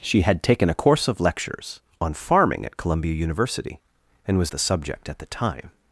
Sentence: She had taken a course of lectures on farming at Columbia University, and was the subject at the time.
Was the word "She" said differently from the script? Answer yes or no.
no